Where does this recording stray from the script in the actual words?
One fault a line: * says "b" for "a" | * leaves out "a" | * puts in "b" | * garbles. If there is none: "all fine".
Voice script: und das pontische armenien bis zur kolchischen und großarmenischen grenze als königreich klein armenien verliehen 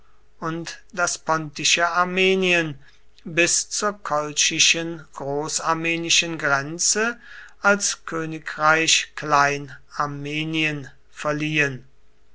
* leaves out "und"